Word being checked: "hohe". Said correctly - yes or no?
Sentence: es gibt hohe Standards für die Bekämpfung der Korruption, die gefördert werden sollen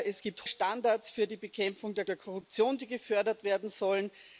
no